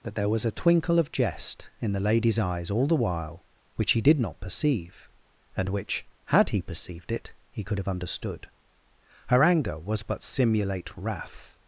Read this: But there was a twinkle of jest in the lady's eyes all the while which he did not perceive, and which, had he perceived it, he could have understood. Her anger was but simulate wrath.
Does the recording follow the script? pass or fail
pass